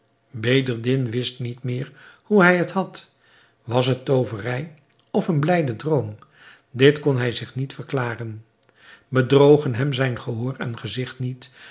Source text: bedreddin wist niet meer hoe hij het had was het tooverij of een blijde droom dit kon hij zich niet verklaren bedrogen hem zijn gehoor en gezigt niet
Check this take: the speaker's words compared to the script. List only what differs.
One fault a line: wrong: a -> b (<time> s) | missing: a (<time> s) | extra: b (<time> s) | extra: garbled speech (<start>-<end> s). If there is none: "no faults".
no faults